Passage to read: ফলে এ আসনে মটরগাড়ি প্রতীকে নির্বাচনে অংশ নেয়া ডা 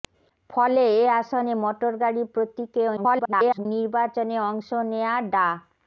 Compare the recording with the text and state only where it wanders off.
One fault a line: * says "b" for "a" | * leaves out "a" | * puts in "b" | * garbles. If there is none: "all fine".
* garbles